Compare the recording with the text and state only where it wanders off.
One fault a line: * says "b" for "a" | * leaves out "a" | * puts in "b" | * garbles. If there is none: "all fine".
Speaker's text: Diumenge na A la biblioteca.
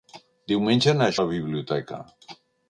all fine